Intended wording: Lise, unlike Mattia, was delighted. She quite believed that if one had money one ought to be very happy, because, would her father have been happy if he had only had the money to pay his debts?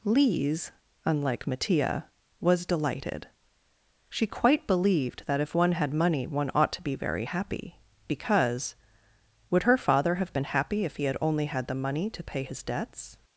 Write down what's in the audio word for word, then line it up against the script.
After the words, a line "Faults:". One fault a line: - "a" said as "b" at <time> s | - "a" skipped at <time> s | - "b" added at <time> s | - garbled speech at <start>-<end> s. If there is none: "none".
Lise, unlike Mattia, was delighted. She quite believed that if one had money one ought to be very happy, because, would her father have been happy if he had only had the money to pay his debts?
Faults:
none